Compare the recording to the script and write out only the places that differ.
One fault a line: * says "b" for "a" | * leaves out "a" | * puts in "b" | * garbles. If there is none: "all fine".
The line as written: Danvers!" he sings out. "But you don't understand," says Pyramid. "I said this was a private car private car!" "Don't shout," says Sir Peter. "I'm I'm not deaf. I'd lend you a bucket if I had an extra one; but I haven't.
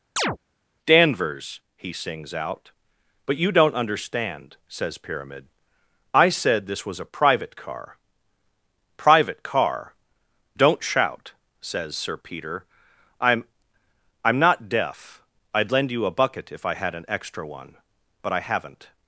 all fine